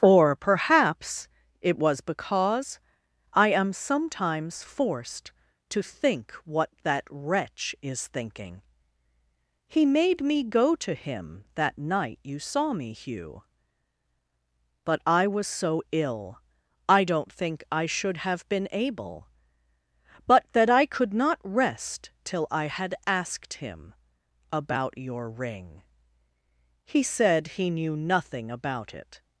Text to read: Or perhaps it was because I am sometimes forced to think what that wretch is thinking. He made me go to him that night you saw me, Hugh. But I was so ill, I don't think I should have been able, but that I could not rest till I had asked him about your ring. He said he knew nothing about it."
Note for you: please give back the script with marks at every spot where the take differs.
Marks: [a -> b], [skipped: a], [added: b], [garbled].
Or perhaps it was because I am sometimes forced to think what that wretch is thinking. He made me go to him that night you saw me, Hugh. But I was so ill, I don't think I should have been able, but that I could not rest till I had asked him about your ring. He said he knew nothing about it."